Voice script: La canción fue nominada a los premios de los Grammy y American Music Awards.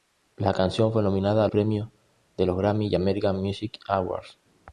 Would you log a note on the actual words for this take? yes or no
yes